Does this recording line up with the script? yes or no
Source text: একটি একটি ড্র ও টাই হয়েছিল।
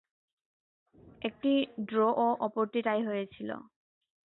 no